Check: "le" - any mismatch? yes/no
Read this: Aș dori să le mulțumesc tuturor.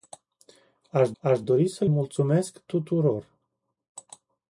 yes